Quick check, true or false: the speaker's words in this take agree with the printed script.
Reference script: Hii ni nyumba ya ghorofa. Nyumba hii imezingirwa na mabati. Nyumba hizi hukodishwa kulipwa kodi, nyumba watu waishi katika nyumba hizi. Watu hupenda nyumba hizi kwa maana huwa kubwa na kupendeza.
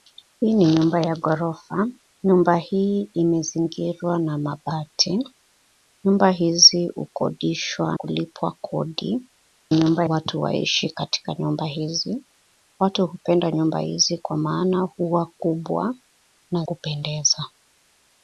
true